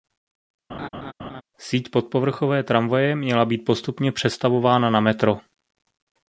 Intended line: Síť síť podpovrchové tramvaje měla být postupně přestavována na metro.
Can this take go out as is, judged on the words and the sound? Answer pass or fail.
fail